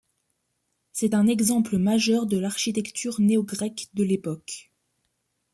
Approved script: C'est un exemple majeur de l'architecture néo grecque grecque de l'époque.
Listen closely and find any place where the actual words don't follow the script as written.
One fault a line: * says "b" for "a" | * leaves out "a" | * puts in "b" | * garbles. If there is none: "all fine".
* leaves out "grecque"